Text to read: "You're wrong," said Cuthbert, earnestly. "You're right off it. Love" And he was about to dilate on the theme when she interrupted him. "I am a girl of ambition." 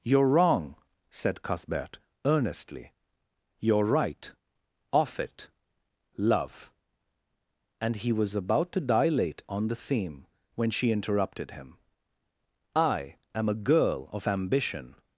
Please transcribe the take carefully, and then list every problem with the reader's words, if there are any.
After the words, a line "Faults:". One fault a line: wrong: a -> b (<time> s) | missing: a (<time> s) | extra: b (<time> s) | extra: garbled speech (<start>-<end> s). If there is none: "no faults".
"You're wrong," said Cuthbert, earnestly. "You're right off it. Love" And he was about to dilate on the theme when she interrupted him. "I am a girl of ambition."
Faults:
no faults